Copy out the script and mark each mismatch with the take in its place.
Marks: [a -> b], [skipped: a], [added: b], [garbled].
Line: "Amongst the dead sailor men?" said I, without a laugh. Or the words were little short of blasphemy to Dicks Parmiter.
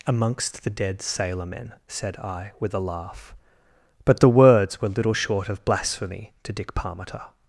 "Amongst the dead sailor men?" said I, [without -> with] a laugh. [Or -> But] the words were little short of blasphemy to [Dicks -> Dick] Parmiter.